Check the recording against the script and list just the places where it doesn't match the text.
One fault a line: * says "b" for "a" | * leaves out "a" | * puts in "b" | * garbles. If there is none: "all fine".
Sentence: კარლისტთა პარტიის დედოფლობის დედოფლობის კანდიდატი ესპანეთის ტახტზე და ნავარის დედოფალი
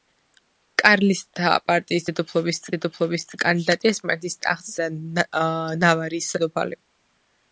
all fine